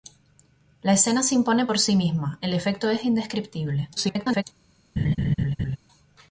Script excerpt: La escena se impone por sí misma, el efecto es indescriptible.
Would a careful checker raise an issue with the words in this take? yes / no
yes